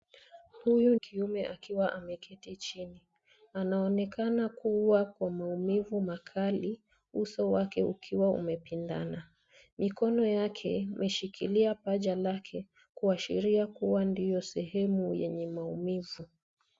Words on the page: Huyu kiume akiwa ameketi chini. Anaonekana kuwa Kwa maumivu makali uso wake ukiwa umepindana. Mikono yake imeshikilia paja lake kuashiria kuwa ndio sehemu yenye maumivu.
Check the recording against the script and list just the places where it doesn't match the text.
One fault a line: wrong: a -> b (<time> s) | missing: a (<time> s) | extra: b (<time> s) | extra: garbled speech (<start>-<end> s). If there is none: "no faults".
no faults